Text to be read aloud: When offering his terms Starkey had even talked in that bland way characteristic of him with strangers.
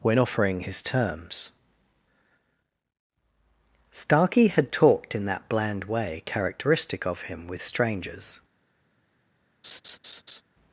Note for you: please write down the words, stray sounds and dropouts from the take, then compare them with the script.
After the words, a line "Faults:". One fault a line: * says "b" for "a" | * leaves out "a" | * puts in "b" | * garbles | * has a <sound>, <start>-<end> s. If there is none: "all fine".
When offering his terms Starkey had talked in that bland way characteristic of him with strangers.
Faults:
* leaves out "even"
* has a laugh, 9.6-10.4 s